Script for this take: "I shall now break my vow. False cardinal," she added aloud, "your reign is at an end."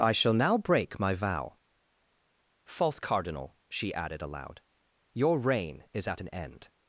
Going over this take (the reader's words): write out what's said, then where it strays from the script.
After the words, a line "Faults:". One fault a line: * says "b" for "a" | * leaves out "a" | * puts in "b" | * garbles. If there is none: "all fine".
"I shall now break my vow. False cardinal," she added aloud, "your reign is at an end."
Faults:
all fine